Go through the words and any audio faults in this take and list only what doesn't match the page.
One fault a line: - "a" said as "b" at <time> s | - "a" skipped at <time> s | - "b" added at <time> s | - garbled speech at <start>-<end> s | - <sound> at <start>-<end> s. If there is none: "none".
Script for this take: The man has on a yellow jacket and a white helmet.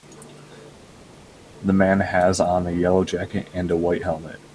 none